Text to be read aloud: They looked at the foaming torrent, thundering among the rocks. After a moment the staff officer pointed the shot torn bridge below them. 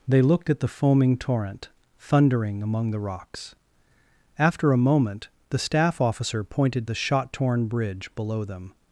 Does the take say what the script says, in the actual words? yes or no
yes